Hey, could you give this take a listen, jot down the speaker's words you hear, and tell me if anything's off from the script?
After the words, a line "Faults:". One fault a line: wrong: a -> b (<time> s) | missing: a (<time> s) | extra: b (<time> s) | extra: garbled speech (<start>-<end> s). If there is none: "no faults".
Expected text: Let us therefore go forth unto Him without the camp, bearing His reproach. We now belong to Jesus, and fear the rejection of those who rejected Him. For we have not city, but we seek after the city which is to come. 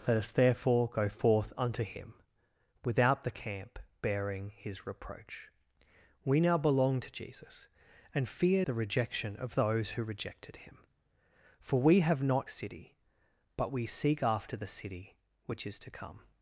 Let us therefore go forth unto Him without the camp, bearing His reproach. We now belong to Jesus, and fear the rejection of those who rejected Him. For we have not city, but we seek after the city which is to come.
Faults:
no faults